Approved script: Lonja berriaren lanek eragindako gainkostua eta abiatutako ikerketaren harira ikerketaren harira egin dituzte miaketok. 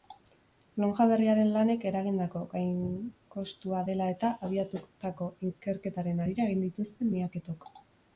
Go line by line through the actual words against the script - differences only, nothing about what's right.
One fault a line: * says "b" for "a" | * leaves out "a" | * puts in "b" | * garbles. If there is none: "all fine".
* puts in "dela"
* leaves out "ikerketaren harira"